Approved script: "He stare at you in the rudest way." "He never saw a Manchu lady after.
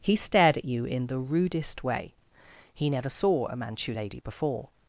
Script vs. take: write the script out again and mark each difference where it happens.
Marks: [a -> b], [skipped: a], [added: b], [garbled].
"He [stare -> stared] at you in the rudest way." "He never saw a Manchu lady [after. -> before]